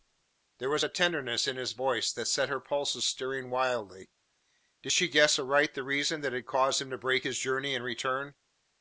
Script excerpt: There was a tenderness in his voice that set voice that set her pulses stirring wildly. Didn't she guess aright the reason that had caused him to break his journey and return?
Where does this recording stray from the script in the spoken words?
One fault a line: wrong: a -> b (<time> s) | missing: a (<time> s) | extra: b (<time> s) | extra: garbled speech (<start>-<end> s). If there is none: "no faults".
missing: voice that set (2.5 s)
wrong: Didn't -> Did (4.8 s)